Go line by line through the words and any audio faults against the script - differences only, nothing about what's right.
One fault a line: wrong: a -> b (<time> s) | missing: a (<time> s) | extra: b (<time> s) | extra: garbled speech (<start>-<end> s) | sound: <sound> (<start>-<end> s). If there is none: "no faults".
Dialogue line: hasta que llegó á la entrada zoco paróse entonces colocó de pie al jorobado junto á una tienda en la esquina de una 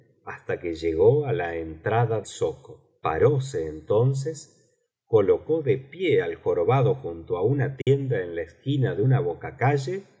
sound: dropout (7.8-7.9 s)